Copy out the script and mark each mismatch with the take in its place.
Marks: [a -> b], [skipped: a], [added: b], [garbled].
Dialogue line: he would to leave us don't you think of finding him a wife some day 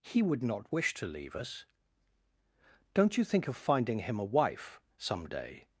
he would [added: not wish] to leave us don't you think of finding him a wife some day